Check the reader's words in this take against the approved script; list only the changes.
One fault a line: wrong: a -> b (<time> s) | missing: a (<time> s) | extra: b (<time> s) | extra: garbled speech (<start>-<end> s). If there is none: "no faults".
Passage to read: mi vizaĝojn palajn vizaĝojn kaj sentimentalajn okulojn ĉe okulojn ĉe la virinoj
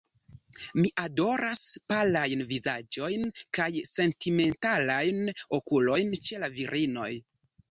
wrong: vizaĝojn -> adoras (1.0 s)
missing: okulojn ĉe (6.4 s)